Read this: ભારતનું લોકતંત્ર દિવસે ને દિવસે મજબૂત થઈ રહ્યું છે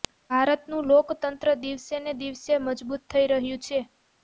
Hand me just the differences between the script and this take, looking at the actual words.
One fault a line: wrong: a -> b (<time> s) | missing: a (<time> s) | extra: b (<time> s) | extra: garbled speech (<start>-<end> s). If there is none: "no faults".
no faults